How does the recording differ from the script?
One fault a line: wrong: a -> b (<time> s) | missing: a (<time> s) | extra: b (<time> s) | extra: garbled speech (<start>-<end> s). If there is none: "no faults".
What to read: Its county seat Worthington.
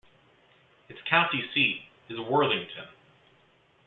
extra: is (2.1 s)